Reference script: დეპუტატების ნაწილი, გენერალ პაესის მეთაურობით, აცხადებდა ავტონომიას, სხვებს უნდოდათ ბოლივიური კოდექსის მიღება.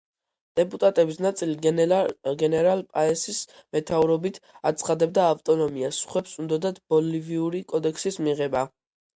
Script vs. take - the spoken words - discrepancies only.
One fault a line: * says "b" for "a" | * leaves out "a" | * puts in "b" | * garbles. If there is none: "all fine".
all fine